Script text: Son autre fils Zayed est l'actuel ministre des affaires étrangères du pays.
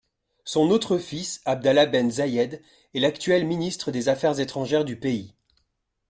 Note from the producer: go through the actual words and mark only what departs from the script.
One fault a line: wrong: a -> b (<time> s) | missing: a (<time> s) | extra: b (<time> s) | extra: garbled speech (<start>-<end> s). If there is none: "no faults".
extra: Abdallah Ben (1.4 s)